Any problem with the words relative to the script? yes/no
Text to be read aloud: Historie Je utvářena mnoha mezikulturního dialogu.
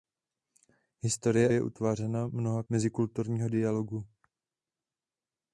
no